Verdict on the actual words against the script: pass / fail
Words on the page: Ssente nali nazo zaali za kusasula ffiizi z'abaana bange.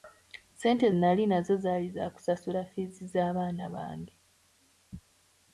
pass